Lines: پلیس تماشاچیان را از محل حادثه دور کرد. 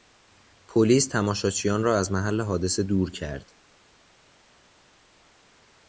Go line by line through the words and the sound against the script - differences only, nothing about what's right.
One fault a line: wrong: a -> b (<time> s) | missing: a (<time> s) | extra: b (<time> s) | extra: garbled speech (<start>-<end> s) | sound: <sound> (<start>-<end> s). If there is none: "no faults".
no faults